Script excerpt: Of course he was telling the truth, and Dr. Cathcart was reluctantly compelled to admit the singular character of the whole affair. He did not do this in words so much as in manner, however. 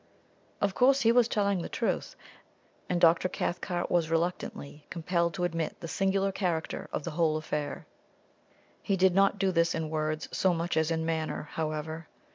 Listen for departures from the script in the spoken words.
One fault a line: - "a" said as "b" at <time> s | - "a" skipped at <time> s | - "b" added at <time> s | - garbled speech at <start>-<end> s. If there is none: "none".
none